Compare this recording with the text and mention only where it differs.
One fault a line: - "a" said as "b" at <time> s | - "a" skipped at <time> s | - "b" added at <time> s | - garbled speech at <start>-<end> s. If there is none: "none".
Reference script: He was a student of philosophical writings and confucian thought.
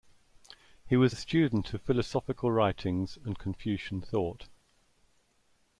none